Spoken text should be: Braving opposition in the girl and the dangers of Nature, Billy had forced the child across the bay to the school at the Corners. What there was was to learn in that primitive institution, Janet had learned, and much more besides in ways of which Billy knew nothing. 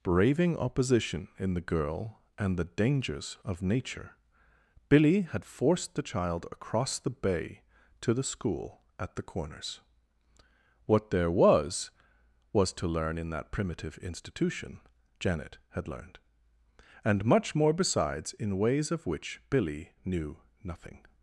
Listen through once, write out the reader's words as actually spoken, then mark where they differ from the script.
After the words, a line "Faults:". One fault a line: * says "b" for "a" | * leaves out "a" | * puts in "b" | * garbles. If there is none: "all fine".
Braving opposition in the girl and the dangers of Nature, Billy had forced the child across the bay to the school at the Corners. What there was was to learn in that primitive institution, Janet had learned, and much more besides in ways of which Billy knew nothing.
Faults:
all fine